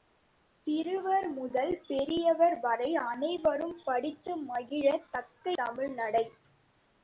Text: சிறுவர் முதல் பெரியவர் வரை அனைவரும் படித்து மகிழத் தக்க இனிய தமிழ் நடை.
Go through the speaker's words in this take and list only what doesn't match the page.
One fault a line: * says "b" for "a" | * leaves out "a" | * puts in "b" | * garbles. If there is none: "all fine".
* leaves out "இனிய"